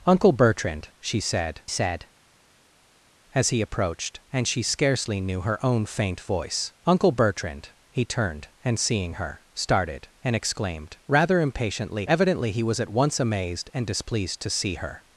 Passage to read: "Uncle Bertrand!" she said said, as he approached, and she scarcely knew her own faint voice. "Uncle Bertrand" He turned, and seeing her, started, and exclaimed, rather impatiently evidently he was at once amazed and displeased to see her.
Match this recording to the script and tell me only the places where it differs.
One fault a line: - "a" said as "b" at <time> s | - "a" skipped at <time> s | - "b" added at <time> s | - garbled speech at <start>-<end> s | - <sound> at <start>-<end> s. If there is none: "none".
none